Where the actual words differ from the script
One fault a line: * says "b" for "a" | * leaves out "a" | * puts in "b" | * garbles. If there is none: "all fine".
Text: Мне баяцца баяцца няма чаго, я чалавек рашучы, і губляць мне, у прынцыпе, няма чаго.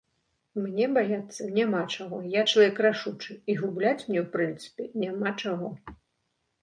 * leaves out "баяцца"